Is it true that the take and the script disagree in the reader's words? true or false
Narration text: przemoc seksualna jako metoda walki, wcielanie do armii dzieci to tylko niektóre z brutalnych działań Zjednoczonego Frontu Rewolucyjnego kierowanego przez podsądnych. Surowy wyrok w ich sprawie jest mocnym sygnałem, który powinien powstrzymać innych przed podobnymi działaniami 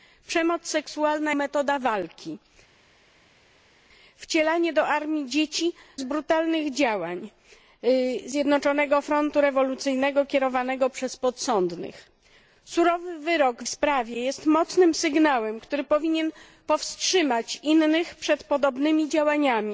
true